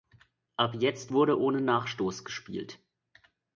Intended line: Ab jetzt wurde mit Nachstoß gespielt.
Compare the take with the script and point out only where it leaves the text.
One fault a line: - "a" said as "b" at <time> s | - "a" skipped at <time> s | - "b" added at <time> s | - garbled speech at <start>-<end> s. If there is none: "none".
- "mit" said as "ohne" at 1.4 s